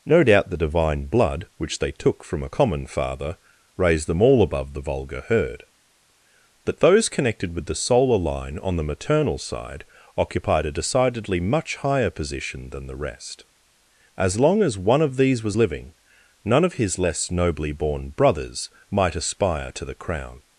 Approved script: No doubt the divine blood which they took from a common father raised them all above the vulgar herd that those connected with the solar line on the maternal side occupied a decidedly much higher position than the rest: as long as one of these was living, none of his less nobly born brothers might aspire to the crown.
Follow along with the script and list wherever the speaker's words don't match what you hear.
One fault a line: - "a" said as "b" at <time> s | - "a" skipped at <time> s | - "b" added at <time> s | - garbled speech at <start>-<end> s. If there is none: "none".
none